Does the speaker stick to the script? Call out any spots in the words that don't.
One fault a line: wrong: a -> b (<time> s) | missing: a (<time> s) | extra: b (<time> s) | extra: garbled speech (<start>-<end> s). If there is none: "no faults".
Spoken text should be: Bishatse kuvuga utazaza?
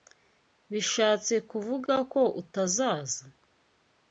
extra: ko (2.1 s)